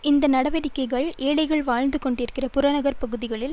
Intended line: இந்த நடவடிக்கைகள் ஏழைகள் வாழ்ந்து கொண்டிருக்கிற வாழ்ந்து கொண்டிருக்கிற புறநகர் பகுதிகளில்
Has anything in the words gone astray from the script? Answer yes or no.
yes